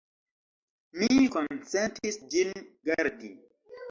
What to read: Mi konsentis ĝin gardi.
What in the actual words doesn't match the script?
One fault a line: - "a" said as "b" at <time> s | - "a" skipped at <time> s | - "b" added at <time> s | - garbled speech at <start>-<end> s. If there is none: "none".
none